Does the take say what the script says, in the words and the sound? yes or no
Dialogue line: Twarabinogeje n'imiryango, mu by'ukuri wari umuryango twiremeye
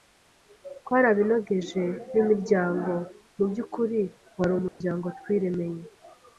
no